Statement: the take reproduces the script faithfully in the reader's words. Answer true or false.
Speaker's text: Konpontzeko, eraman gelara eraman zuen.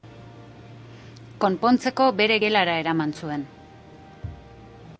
false